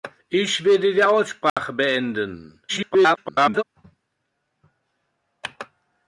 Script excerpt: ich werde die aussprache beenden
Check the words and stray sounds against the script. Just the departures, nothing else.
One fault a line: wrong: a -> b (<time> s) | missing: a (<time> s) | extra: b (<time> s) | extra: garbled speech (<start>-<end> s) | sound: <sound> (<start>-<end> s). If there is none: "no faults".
sound: dropout (1.5-1.6 s)
extra: garbled speech (2.7-3.6 s)